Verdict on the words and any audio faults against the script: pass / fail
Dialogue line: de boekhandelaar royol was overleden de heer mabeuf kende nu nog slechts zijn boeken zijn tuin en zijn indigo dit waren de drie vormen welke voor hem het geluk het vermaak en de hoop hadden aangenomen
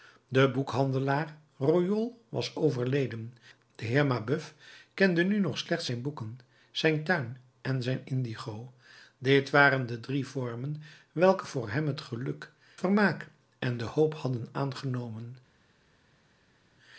fail